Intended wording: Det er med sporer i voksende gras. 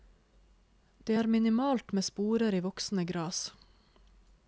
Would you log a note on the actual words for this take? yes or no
yes